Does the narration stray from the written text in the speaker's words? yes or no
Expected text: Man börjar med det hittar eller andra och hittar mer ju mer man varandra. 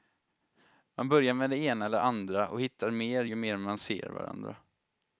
yes